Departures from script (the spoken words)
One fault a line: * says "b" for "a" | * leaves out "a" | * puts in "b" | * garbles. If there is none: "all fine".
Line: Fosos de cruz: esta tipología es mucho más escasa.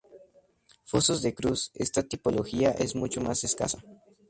all fine